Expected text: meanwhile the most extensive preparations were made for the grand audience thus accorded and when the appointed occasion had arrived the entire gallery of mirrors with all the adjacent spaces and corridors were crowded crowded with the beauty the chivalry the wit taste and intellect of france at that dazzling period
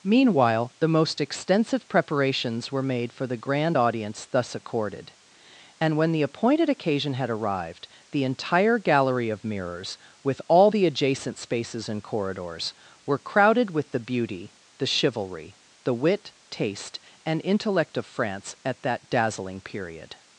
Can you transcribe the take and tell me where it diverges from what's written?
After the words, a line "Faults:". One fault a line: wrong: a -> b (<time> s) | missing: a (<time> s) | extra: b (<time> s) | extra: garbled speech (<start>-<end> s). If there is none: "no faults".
meanwhile the most extensive preparations were made for the grand audience thus accorded and when the appointed occasion had arrived the entire gallery of mirrors with all the adjacent spaces and corridors were crowded with the beauty the chivalry the wit taste and intellect of france at that dazzling period
Faults:
missing: crowded (13.7 s)